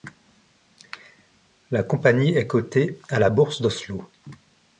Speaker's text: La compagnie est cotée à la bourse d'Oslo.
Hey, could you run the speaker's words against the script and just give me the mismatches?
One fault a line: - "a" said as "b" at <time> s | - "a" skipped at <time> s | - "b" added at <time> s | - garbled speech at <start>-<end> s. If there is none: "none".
none